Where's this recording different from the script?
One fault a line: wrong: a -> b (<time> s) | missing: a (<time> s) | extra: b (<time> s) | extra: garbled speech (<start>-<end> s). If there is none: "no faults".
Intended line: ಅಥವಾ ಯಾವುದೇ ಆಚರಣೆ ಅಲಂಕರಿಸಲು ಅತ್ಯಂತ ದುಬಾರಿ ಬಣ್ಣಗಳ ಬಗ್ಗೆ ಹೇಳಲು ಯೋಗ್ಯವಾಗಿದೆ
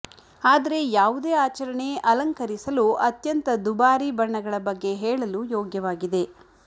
wrong: ಅಥವಾ -> ಆದರೆ (0.4 s)